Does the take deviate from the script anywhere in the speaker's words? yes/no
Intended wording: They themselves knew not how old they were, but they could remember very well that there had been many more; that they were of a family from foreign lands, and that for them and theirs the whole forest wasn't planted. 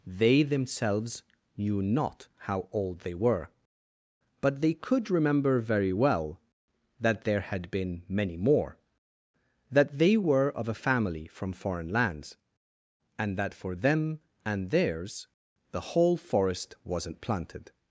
no